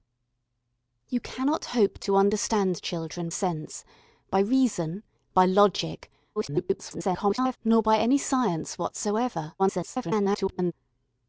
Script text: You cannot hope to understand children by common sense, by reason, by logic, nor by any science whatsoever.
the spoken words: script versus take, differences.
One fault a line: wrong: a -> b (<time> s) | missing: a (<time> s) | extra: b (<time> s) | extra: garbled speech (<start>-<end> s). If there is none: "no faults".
missing: by common (3.3 s)
extra: garbled speech (6.4-7.6 s)
extra: garbled speech (9.6-10.7 s)